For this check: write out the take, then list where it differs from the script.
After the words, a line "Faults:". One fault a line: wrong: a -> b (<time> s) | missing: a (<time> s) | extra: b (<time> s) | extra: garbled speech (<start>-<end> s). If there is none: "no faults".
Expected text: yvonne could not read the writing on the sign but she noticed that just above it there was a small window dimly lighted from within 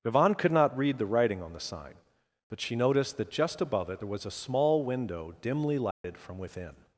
yvonne could not read the writing on the sign but she noticed that just above it there was a small window dimly lighted from within
Faults:
no faults